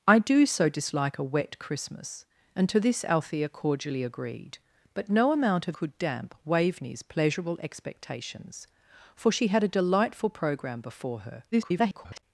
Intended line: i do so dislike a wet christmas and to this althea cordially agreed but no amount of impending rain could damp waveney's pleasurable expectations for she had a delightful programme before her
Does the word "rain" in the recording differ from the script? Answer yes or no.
yes